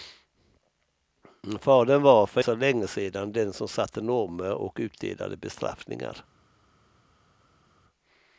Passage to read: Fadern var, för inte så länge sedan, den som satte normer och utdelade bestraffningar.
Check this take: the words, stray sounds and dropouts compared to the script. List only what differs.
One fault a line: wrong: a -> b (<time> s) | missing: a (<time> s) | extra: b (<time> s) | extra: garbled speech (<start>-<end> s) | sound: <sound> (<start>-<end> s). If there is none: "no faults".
missing: inte (2.4 s)